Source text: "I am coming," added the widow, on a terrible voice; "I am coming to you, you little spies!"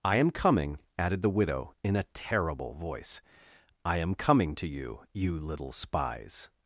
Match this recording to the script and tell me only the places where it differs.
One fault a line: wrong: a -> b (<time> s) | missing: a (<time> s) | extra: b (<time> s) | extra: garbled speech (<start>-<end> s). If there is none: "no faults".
wrong: on -> in (1.8 s)